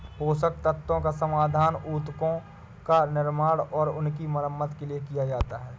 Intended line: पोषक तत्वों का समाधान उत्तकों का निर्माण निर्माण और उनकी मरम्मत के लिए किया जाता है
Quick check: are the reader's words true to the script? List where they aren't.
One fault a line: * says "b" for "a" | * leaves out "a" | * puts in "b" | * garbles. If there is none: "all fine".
* leaves out "निर्माण"